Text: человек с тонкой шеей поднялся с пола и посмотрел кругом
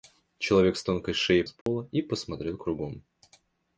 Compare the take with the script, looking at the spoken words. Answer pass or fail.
fail